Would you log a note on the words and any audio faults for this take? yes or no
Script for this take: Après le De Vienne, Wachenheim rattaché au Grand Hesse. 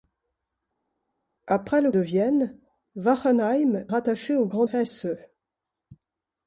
no